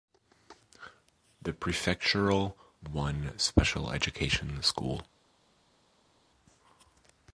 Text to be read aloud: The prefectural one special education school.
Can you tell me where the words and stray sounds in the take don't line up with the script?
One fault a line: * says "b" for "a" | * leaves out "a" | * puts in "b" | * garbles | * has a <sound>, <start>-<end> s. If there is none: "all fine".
all fine